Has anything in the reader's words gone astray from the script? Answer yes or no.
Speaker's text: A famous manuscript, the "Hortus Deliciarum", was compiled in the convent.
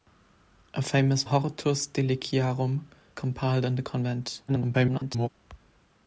yes